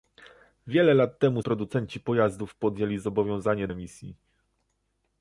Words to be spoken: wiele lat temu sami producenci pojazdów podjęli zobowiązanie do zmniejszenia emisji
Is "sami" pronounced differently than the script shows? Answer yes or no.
yes